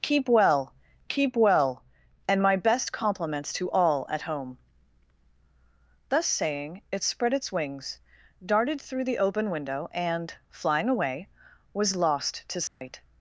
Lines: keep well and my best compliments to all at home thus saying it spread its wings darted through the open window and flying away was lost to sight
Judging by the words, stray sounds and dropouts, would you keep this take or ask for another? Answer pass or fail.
fail